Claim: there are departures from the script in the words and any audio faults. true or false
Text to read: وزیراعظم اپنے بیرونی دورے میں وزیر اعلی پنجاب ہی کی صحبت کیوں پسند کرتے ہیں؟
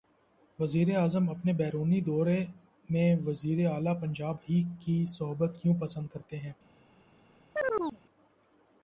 true